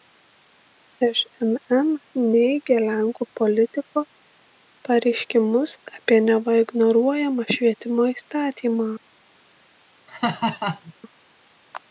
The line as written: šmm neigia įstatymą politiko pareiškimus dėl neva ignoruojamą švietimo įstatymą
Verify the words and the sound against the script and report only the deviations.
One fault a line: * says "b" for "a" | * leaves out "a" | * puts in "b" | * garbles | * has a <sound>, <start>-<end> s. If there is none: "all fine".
* says "lenkų" for "įstatymą"
* says "apie" for "dėl"
* has a laugh, 10.1-10.9 s